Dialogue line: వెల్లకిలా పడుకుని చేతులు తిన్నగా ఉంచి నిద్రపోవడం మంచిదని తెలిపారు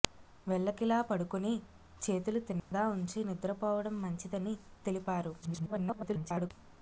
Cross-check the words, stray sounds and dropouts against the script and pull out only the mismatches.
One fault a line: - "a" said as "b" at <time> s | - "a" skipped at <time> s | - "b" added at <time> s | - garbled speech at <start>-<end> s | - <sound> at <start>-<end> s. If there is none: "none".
- dropout at 2.6-2.7 s
- garbled speech at 5.4-6.5 s